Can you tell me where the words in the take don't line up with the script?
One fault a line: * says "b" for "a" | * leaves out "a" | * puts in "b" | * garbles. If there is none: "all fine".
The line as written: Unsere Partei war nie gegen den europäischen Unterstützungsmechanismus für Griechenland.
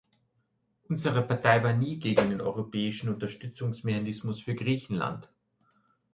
all fine